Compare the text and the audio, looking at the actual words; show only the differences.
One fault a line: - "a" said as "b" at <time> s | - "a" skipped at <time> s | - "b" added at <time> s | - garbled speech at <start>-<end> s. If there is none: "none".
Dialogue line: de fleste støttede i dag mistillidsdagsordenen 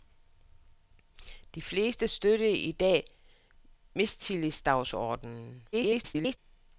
- garbled speech at 5.7-6.4 s